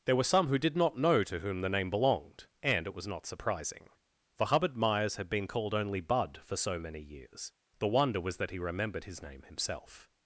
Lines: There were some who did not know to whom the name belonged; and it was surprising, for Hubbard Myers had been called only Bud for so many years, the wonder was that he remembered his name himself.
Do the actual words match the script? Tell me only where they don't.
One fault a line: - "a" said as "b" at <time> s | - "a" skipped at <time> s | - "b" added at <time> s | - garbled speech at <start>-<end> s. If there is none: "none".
- "not" added at 3.0 s